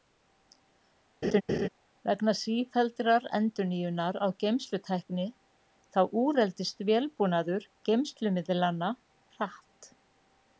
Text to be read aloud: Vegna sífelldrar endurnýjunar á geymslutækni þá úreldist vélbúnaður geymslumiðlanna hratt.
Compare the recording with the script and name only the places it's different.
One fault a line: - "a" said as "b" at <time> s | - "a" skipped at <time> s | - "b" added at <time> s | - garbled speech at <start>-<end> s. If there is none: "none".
none